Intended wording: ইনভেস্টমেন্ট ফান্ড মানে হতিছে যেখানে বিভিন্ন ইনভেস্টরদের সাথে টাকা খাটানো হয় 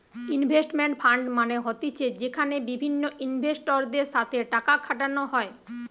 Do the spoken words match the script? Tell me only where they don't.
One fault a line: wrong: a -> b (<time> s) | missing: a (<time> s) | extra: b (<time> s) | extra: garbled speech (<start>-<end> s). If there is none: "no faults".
no faults